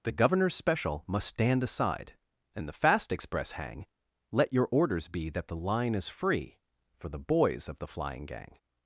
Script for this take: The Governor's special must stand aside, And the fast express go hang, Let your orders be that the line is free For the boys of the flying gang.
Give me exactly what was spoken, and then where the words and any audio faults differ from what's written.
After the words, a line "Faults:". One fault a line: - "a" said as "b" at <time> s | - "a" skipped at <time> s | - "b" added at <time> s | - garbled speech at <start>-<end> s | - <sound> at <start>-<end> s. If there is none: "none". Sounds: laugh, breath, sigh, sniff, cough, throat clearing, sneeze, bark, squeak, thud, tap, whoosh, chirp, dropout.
The Governor's special must stand aside, And the fast express hang, Let your orders be that the line is free For the boys of the flying gang.
Faults:
- "go" skipped at 3.5 s